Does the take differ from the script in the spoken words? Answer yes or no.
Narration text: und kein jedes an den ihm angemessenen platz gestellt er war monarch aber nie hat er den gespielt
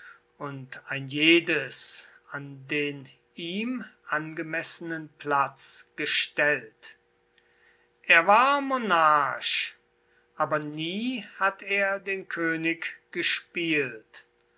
yes